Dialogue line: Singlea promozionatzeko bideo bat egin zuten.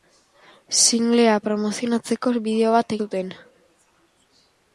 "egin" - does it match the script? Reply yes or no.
no